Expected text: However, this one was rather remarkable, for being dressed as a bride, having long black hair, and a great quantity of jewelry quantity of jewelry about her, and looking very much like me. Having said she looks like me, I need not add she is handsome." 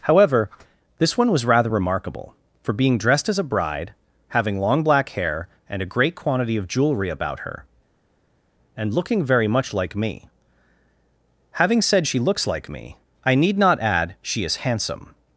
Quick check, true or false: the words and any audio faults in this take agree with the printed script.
false